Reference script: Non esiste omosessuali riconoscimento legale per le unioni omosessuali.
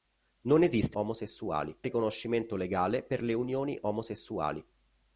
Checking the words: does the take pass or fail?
pass